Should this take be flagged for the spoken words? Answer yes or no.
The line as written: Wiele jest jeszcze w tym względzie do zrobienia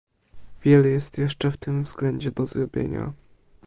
no